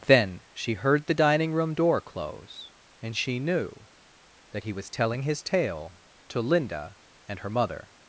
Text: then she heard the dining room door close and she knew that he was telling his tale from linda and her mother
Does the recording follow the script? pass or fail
fail